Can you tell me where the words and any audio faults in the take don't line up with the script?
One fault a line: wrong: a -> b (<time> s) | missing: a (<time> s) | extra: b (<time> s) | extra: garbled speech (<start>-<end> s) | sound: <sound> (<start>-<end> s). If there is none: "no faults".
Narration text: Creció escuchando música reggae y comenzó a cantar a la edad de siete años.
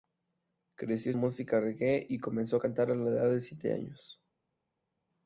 missing: escuchando (1.1 s)